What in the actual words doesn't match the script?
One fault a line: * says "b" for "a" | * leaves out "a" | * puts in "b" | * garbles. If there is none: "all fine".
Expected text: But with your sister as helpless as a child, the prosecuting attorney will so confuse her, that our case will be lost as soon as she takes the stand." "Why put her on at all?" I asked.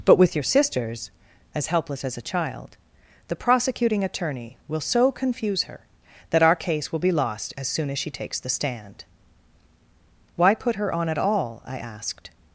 * says "sisters" for "sister"